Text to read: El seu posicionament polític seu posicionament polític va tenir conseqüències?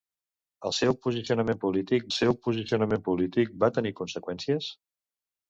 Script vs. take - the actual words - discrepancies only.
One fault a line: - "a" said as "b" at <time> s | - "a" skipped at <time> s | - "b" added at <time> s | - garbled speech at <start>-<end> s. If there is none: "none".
none